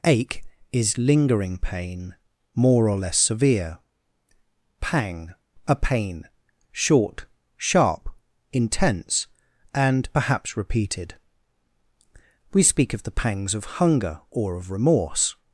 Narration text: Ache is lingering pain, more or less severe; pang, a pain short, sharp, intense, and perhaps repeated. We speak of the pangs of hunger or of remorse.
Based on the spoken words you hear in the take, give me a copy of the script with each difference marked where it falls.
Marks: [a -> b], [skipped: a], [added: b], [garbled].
Ache is lingering pain, more or less severe; pang, a pain short, sharp, intense, and perhaps repeated. We speak of the pangs of hunger or of remorse.